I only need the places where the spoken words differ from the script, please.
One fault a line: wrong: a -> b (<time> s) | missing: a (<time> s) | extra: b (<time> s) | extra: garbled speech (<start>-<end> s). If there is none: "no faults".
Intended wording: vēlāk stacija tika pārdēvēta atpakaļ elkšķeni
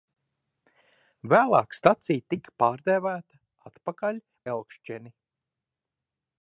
no faults